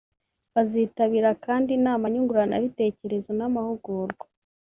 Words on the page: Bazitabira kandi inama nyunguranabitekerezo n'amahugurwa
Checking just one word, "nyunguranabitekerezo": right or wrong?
right